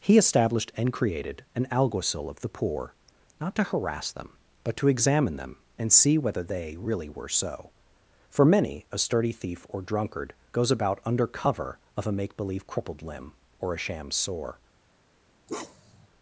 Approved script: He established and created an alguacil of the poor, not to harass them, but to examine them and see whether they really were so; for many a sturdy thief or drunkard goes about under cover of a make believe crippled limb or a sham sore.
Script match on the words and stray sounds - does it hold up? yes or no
no